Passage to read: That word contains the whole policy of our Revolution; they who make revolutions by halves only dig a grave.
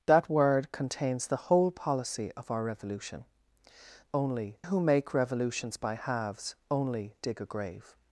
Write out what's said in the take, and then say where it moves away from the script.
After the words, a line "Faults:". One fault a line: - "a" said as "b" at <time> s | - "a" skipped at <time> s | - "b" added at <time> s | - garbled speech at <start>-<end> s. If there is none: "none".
That word contains the whole policy of our Revolution; only who make revolutions by halves only dig a grave.
Faults:
- "they" said as "only" at 4.1 s